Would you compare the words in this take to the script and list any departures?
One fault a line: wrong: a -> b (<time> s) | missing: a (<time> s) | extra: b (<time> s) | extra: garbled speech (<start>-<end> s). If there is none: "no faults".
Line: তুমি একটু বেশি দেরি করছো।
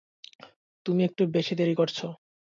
no faults